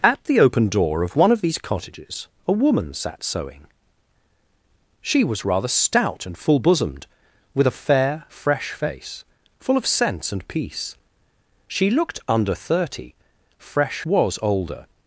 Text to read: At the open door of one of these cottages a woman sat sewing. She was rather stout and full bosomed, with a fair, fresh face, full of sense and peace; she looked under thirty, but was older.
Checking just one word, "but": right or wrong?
wrong